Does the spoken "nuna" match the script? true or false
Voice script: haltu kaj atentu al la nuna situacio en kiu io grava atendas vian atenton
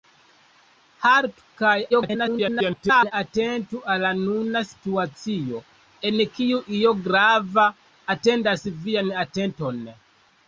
true